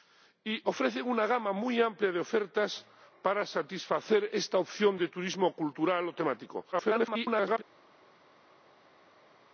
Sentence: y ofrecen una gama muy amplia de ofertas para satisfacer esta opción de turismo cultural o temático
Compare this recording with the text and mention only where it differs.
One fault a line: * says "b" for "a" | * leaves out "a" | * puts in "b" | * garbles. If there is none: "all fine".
* garbles